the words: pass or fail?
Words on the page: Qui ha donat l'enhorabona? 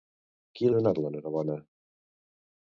pass